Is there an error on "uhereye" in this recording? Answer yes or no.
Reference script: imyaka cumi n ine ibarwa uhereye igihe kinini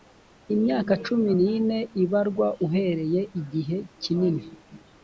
no